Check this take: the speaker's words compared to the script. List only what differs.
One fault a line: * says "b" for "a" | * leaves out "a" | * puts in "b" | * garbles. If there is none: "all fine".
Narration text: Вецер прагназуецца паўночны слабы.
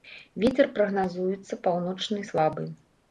all fine